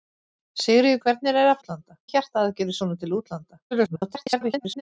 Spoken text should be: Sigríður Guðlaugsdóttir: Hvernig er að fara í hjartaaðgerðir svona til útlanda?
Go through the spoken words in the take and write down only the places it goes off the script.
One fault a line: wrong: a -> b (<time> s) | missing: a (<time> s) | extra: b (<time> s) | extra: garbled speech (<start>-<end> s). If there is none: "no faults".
missing: Guðlaugsdóttir (1.0 s)
wrong: fara -> útlanda (1.6 s)
extra: garbled speech (3.7-4.8 s)